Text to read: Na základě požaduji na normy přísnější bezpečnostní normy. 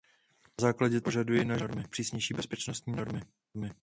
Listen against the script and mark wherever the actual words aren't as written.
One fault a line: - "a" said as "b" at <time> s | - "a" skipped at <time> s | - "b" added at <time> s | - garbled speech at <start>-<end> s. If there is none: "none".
none